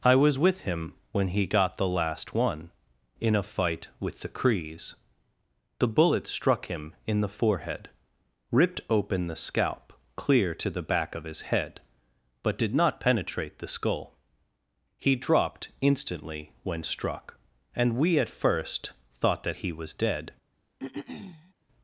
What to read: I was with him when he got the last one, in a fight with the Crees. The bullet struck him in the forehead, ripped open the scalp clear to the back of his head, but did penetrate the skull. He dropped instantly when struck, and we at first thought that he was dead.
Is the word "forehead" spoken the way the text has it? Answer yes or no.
yes